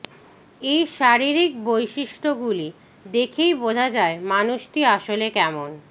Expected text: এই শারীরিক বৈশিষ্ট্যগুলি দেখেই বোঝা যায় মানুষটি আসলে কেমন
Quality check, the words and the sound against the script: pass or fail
pass